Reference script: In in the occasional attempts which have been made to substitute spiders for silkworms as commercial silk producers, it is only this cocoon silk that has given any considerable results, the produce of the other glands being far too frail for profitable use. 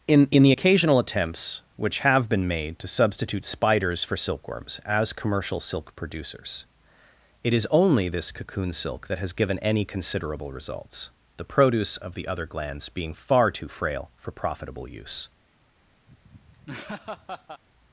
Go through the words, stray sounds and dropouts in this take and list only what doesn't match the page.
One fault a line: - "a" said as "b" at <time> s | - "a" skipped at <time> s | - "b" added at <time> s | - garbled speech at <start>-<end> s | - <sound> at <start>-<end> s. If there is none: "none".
- laugh at 16.1-17.6 s